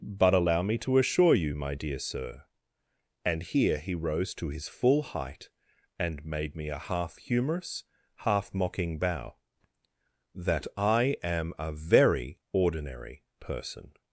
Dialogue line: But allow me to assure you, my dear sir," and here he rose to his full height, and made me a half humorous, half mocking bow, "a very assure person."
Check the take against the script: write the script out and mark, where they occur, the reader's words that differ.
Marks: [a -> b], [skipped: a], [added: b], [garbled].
But allow me to assure you, my dear sir," and here he rose to his full height, and made me a half humorous, half mocking bow, [added: that I am] "a very [assure -> ordinary] person."